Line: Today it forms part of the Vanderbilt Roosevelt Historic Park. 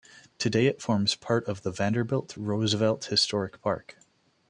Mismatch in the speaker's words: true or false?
false